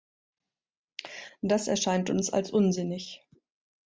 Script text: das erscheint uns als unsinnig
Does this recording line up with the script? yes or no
yes